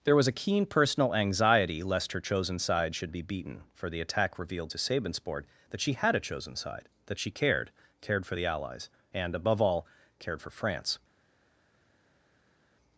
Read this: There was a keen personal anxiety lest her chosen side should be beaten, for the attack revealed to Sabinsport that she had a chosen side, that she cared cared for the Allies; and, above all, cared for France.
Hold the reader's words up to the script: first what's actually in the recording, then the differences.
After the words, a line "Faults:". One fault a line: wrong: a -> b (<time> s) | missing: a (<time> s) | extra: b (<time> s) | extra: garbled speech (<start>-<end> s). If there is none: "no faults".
There was a keen personal anxiety lest her chosen side should be beaten, for the attack revealed to Sabinsport that she had a chosen side, that she cared cared for the Allies; and, above all, cared for France.
Faults:
no faults